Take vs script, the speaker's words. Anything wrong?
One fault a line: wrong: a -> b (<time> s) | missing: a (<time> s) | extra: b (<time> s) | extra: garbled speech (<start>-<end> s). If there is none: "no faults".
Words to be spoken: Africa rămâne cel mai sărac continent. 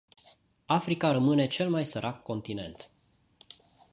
no faults